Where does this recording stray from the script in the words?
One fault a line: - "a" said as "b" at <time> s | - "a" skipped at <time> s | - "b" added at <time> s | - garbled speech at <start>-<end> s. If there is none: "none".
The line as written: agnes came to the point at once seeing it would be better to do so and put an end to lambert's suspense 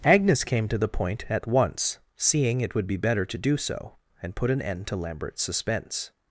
none